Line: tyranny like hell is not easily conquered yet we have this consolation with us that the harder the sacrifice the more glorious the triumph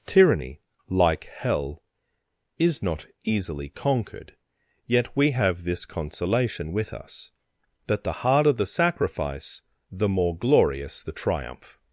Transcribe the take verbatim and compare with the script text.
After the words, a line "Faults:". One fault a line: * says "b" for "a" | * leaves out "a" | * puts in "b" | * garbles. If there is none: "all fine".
tyranny like hell is not easily conquered yet we have this consolation with us that the harder the sacrifice the more glorious the triumph
Faults:
all fine